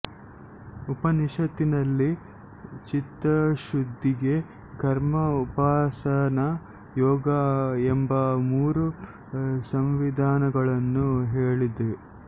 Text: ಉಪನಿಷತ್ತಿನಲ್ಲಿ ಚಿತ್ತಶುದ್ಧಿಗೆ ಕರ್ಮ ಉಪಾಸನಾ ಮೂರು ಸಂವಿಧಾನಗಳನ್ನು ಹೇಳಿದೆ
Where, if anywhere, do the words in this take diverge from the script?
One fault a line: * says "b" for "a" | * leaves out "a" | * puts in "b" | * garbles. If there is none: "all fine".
* puts in "ಯೋಗ ಎಂಬ"